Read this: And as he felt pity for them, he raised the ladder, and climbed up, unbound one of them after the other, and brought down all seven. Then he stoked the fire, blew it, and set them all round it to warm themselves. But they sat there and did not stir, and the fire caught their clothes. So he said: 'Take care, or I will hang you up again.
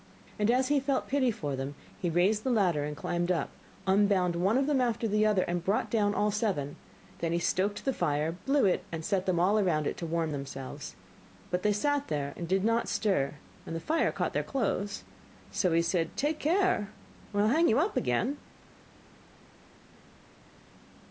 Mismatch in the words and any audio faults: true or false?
false